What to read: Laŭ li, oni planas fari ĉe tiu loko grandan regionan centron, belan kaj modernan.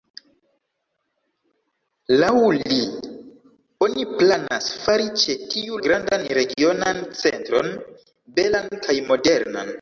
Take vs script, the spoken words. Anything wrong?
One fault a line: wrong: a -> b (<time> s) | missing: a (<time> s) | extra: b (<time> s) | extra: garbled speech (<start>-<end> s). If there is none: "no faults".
missing: loko (5.8 s)